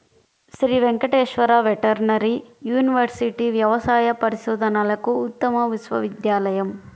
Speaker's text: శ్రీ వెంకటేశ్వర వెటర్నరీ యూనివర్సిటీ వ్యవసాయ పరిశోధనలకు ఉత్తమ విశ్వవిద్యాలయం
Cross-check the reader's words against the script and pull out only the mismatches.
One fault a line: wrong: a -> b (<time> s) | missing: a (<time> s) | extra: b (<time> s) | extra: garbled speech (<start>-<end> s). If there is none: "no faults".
no faults